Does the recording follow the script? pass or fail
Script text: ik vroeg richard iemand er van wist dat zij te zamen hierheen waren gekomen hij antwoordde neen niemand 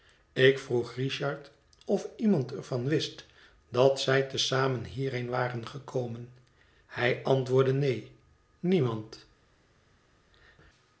fail